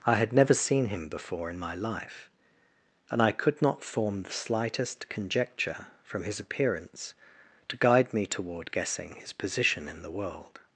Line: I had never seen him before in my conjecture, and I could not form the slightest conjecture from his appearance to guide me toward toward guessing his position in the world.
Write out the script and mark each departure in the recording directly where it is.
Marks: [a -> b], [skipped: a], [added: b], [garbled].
I had never seen him before in my [conjecture, -> life] and I could not form the slightest conjecture from his appearance to guide me toward [skipped: toward] guessing his position in the world.